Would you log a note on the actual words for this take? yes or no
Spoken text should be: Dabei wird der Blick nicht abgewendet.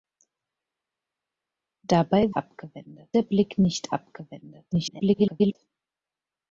yes